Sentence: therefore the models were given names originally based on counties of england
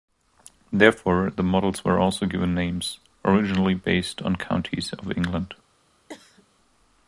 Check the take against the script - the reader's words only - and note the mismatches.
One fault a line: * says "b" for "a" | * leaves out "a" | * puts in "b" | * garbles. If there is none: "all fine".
* puts in "also"